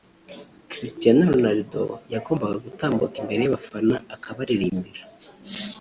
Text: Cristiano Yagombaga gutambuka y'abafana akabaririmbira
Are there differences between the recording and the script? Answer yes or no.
yes